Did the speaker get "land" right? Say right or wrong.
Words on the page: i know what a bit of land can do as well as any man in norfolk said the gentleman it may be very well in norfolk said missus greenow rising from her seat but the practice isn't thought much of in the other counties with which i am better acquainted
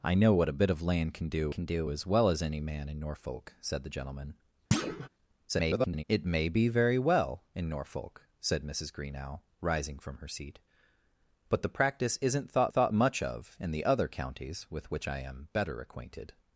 right